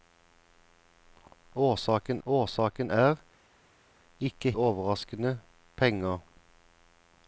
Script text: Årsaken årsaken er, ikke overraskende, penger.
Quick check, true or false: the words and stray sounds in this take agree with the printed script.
true